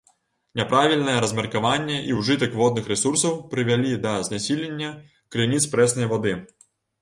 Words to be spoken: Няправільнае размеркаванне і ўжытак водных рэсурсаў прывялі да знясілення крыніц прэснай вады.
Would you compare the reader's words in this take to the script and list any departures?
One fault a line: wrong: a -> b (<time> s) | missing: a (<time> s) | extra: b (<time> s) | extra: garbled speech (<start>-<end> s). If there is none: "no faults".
no faults